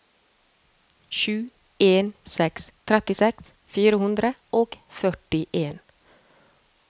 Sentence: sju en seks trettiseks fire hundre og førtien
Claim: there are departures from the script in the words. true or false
false